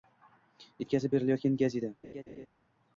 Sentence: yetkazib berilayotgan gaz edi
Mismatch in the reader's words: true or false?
false